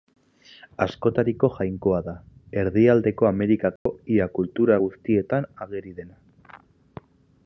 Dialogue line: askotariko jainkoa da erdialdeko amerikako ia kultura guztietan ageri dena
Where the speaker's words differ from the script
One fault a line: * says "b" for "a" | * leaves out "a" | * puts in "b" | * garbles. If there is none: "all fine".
all fine